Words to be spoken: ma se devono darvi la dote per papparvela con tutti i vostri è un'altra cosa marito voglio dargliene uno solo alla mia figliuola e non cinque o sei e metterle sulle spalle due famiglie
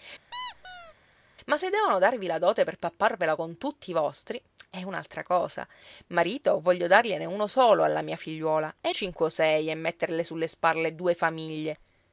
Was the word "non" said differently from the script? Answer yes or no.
yes